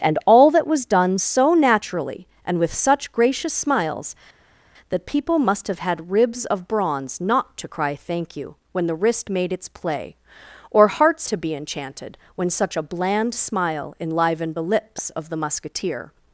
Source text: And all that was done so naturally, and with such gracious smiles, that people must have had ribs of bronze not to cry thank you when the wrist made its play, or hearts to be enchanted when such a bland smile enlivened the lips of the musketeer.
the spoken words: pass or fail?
pass